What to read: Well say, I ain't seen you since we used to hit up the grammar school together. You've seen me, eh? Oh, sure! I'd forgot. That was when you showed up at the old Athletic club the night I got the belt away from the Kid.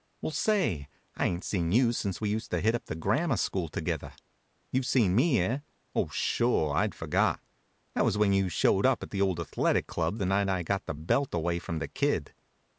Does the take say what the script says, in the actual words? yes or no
yes